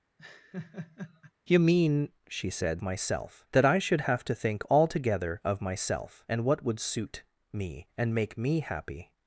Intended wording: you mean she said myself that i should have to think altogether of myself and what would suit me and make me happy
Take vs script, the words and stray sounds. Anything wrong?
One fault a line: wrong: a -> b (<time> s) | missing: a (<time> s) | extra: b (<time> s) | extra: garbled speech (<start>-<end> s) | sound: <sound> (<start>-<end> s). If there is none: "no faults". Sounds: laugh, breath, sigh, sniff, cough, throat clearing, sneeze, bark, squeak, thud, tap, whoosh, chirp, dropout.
sound: laugh (0.2-1.3 s)